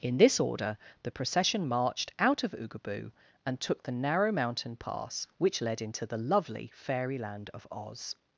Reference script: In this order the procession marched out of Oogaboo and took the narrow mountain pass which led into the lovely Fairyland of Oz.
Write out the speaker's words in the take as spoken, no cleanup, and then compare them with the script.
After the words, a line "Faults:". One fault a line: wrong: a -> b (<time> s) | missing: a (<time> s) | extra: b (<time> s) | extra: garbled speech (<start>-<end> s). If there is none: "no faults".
In this order the procession marched out of Oogaboo and took the narrow mountain pass which led into the lovely Fairyland of Oz.
Faults:
no faults